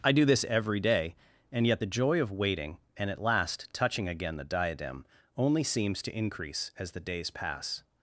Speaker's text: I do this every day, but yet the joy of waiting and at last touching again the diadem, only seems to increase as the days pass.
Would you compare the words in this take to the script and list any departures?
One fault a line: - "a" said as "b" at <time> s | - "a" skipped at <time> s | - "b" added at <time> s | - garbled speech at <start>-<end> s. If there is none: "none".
- "but" said as "and" at 1.5 s